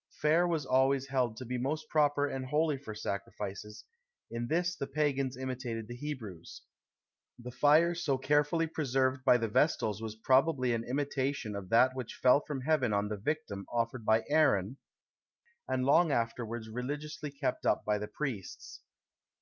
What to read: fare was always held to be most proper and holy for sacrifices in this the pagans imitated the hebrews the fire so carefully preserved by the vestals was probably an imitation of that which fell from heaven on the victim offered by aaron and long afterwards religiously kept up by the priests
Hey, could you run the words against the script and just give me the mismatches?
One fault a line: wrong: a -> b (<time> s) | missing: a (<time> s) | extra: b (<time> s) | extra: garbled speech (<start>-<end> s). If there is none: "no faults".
no faults